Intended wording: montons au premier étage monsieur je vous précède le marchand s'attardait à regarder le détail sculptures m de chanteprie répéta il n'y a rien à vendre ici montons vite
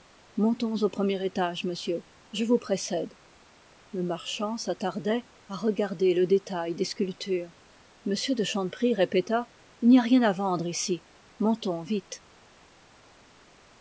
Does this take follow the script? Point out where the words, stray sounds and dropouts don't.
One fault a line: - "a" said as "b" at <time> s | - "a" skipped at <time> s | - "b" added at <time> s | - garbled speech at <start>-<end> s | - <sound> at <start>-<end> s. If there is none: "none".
- "des" added at 6.7 s